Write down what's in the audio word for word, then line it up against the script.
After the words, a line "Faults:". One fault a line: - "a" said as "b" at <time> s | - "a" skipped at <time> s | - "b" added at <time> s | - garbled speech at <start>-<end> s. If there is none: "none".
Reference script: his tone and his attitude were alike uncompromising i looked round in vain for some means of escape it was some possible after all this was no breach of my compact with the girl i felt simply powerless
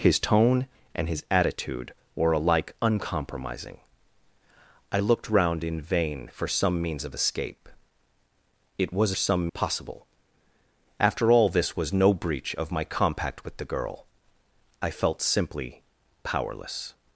his tone and his attitude were alike uncompromising i looked round in vain for some means of escape it was some possible after all this was no breach of my compact with the girl i felt simply powerless
Faults:
none